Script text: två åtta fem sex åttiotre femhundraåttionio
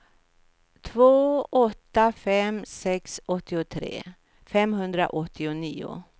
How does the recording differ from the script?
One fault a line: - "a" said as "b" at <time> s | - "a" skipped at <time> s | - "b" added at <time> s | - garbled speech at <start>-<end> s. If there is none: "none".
none